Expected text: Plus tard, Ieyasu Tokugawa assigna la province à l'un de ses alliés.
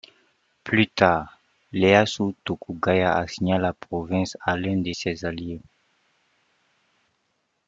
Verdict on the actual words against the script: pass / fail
pass